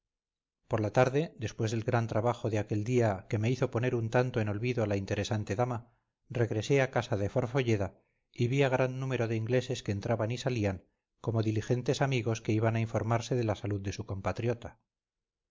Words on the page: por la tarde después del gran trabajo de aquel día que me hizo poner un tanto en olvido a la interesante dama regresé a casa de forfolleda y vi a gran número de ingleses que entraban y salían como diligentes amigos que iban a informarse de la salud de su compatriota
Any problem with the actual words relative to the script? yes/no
no